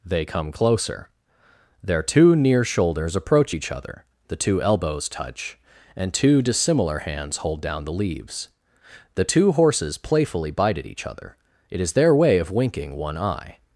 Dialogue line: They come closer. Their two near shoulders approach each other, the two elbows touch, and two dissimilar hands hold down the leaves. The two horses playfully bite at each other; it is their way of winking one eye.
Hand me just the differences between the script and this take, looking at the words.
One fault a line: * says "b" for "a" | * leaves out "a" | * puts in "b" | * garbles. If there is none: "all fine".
all fine